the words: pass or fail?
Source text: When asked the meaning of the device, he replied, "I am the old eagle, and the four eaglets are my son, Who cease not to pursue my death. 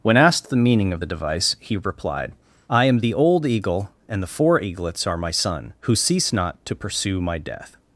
pass